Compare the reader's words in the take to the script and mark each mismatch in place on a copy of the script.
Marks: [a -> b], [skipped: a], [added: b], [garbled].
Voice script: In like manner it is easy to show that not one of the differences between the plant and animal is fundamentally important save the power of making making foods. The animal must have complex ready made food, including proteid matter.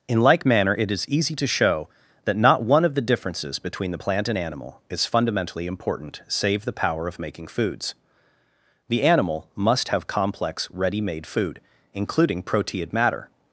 In like manner it is easy to show that not one of the differences between the plant and animal is fundamentally important save the power of making [skipped: making] foods. The animal must have complex ready made food, including proteid matter.